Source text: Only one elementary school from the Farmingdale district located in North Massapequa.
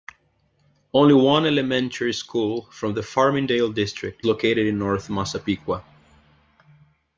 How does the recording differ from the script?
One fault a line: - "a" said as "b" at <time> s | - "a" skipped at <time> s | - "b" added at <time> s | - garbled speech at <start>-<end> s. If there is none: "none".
none